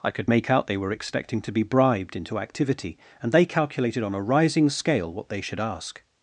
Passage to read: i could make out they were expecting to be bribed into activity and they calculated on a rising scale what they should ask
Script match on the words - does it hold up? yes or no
yes